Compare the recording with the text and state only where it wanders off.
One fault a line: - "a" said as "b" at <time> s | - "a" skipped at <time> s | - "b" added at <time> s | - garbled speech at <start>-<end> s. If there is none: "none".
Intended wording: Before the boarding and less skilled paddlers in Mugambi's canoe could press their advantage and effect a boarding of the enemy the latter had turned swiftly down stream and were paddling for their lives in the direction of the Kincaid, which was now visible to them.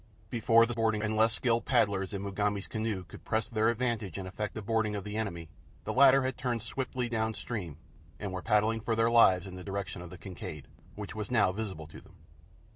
none